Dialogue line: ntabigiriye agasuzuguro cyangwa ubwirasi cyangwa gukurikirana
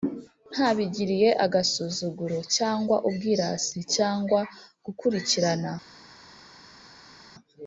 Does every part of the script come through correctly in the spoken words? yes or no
yes